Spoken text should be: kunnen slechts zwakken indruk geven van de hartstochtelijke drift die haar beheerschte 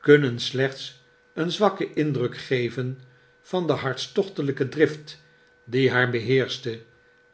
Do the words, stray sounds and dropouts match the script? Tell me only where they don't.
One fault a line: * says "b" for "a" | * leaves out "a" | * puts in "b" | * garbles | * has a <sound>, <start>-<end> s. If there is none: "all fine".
* puts in "een"